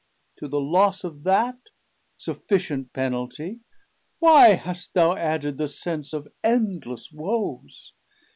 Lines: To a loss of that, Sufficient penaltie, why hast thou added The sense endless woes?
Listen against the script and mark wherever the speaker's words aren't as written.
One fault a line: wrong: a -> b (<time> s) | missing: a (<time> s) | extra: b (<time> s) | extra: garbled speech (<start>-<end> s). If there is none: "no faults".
wrong: a -> the (0.5 s)
extra: of (6.1 s)